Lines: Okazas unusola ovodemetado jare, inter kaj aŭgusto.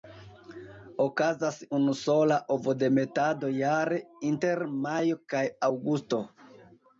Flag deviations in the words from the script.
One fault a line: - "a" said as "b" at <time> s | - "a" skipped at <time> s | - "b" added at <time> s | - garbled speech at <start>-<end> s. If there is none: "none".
- "majo" added at 4.9 s